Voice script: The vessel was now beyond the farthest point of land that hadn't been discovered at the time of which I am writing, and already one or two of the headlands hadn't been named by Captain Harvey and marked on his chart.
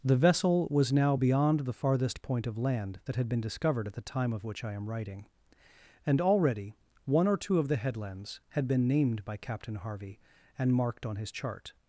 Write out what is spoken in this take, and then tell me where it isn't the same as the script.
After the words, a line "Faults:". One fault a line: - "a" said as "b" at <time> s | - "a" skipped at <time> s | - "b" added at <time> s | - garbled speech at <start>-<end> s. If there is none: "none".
The vessel was now beyond the farthest point of land that had been discovered at the time of which I am writing, and already one or two of the headlands had been named by Captain Harvey and marked on his chart.
Faults:
- "hadn't" said as "had" at 3.2 s
- "hadn't" said as "had" at 8.5 s